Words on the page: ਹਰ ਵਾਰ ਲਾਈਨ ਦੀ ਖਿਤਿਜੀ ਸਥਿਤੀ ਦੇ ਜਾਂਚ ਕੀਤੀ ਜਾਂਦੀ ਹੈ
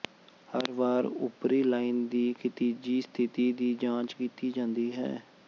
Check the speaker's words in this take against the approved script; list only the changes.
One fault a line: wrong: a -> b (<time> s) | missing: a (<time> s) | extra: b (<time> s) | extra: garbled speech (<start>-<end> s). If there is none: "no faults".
extra: ਉਪਰੀ (1.1 s)
wrong: ਦੇ -> ਦੀ (3.5 s)